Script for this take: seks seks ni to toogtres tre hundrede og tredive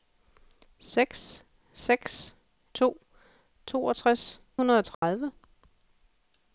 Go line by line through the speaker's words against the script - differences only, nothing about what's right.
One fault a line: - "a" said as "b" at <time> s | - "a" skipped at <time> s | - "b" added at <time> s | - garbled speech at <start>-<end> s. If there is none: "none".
- "ni" skipped at 2.4 s
- "tre" skipped at 4.4 s